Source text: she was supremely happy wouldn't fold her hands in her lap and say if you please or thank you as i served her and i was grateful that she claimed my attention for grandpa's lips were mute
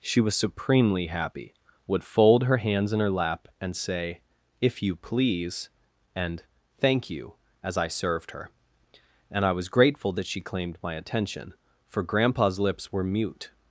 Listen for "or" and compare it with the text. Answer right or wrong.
wrong